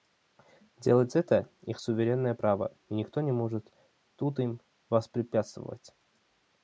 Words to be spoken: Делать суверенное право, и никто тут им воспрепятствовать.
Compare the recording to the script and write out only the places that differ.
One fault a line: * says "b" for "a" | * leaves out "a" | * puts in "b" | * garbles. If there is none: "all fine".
* puts in "это их"
* puts in "не может"